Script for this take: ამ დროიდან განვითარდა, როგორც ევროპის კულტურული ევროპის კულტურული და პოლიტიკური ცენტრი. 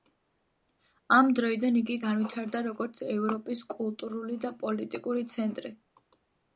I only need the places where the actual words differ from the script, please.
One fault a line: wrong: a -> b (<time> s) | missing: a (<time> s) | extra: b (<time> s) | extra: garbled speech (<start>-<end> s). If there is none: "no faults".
extra: იგი (1.8 s)
missing: ევროპის კულტურული (4.4 s)